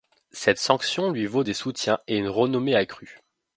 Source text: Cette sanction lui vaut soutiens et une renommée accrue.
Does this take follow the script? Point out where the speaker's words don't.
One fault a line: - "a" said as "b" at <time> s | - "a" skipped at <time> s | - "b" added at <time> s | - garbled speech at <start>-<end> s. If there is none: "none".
- "des" added at 1.4 s